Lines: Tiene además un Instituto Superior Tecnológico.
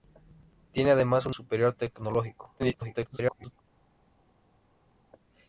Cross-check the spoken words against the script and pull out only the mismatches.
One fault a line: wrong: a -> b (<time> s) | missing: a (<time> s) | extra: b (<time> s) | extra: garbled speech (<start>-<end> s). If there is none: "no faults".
missing: Instituto (1.4 s)
extra: garbled speech (2.6-3.6 s)